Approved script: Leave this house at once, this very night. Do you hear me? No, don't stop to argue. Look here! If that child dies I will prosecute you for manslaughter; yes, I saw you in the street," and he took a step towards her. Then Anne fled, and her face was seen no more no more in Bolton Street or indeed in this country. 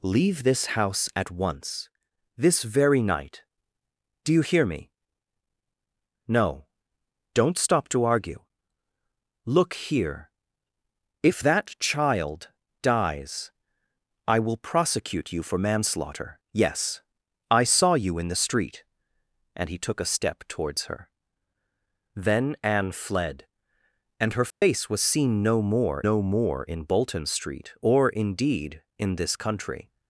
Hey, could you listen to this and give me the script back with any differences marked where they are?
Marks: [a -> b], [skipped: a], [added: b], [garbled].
Leave this house at once, this very night. Do you hear me? No, don't stop to argue. Look here! If that child dies I will prosecute you for manslaughter; yes, I saw you in the street," and he took a step towards her. Then Anne fled, and her face was seen no more no more in Bolton Street or indeed in this country.